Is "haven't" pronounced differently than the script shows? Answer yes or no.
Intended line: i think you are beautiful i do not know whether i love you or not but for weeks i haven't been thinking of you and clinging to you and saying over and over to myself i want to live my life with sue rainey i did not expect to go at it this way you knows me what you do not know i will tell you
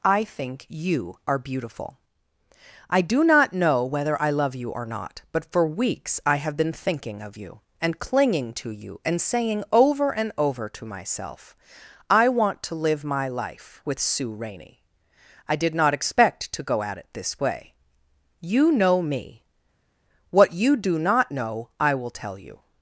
yes